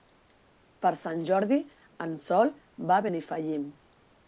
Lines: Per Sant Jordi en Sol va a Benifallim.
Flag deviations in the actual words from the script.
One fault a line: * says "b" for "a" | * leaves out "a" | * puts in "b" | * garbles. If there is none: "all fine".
all fine